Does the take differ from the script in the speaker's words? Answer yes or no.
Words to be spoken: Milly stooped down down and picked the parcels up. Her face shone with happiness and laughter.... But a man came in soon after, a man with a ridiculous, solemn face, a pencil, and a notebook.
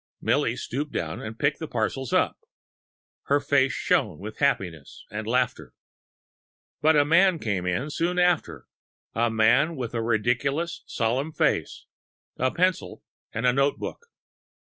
yes